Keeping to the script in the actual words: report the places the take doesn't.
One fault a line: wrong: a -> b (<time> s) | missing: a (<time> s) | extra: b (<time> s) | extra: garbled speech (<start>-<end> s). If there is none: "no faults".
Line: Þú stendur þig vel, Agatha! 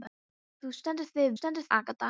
wrong: vel -> stendur (1.4 s)